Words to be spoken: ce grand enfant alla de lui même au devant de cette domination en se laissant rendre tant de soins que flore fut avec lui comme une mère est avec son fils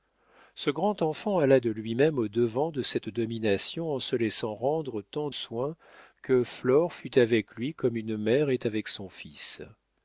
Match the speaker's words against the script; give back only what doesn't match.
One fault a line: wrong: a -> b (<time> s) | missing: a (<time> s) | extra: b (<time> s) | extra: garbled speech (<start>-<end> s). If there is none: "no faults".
missing: de (5.3 s)